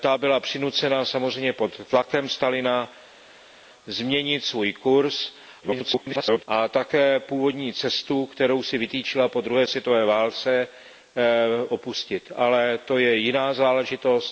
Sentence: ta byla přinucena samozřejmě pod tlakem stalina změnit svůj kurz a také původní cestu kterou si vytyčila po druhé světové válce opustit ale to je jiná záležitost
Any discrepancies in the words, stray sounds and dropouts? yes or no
yes